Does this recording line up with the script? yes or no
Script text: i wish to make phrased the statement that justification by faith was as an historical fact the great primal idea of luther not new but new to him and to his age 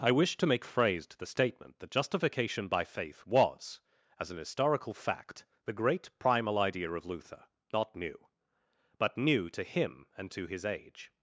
yes